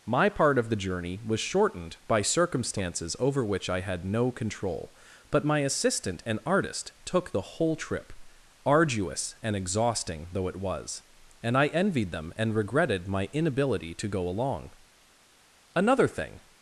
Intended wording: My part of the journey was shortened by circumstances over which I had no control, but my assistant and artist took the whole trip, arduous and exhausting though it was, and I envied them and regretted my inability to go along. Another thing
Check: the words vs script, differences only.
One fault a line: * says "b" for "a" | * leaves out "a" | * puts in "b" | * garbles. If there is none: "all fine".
all fine